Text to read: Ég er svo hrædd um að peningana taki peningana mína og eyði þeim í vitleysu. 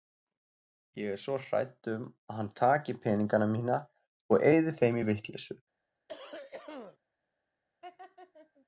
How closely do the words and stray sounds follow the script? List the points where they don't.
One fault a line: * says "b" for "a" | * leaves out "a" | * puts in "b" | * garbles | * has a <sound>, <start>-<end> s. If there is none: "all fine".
* says "hann" for "peningana"
* has a cough, 6.1-7.0 s
* has a laugh, 7.8-8.7 s